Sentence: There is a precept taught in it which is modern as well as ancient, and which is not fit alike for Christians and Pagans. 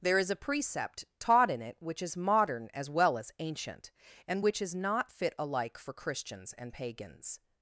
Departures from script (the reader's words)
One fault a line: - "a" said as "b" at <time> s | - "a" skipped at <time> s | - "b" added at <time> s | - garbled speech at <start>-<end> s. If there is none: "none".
none